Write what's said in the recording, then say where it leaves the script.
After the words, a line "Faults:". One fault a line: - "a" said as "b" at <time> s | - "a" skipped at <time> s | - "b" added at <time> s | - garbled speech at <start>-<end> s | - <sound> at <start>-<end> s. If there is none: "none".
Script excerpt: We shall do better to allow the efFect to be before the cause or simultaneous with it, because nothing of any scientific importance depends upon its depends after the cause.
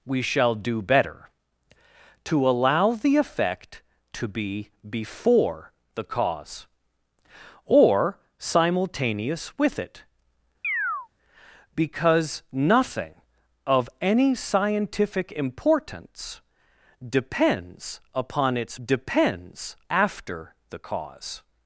We shall do better to allow the efFect to be before the cause or simultaneous with it, because nothing of any scientific importance depends upon its depends after the cause.
Faults:
- chirp at 10.6-11.1 s